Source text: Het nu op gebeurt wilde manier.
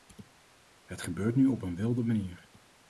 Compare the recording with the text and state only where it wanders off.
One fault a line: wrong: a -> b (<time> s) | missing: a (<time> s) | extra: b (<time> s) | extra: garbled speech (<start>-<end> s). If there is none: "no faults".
extra: gebeurt (1.0 s)
wrong: gebeurt -> een (1.6 s)